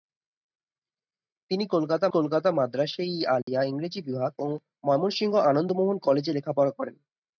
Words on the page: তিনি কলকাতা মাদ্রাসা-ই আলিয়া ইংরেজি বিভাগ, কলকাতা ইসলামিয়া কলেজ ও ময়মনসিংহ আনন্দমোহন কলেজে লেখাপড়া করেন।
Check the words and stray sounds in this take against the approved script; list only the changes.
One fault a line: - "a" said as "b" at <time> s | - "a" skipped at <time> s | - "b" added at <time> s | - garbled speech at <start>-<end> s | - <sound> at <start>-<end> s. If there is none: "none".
- "কলকাতা" added at 2.1 s
- dropout at 3.4-3.5 s
- "কলকাতা ইসলামিয়া কলেজ" skipped at 4.3 s